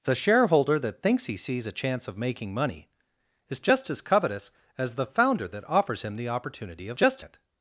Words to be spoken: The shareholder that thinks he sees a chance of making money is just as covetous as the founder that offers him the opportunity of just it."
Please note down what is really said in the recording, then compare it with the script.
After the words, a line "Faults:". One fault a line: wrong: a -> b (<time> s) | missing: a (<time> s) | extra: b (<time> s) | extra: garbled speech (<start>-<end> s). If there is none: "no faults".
The shareholder that thinks he sees a chance of making money is just as covetous as the founder that offers him the opportunity of just it."
Faults:
no faults